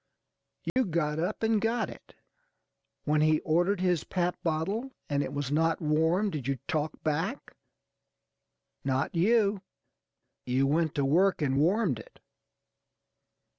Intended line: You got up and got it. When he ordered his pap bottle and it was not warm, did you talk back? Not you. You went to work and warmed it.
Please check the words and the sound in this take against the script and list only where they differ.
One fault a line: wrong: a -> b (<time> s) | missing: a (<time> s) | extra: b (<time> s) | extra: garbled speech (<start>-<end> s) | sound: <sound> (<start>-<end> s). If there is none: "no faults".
sound: dropout (0.7-0.8 s)